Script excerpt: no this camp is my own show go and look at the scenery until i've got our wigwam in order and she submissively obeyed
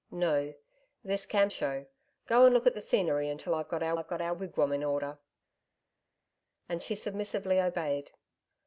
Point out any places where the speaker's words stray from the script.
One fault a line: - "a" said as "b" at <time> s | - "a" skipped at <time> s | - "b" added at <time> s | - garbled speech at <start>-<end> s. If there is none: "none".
- "is my own" skipped at 1.5 s
- "i've got our" added at 3.9 s